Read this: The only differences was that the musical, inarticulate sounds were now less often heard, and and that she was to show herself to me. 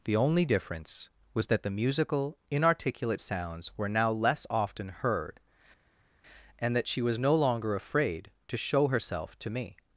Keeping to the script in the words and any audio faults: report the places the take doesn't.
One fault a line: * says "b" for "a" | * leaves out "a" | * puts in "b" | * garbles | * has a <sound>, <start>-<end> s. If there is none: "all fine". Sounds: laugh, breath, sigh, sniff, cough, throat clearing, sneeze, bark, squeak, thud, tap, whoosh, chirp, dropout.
* says "difference" for "differences"
* leaves out "and"
* puts in "no longer afraid"